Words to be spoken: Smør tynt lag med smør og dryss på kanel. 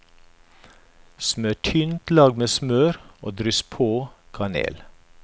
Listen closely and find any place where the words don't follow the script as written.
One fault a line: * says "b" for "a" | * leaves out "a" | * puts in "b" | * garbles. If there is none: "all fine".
all fine